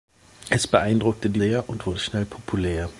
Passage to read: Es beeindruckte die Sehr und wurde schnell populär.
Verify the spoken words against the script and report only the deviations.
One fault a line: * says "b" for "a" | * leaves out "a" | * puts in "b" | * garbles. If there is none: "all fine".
all fine